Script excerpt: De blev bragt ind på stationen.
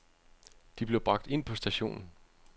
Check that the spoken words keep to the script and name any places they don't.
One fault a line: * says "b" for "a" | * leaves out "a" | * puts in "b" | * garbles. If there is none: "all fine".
all fine